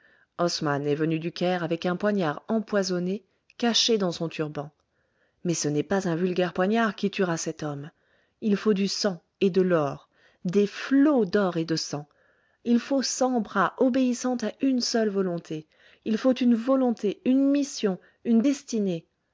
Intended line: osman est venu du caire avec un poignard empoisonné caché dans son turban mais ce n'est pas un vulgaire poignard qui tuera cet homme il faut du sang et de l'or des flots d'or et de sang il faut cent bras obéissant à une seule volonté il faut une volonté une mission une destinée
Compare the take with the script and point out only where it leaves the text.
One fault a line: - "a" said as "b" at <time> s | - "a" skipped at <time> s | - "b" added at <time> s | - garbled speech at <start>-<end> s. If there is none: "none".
none